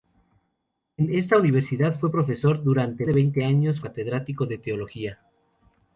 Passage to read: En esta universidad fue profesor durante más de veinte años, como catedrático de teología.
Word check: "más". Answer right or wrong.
wrong